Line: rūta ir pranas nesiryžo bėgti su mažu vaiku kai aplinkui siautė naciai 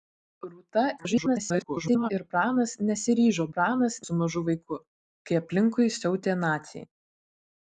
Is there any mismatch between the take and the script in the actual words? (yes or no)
yes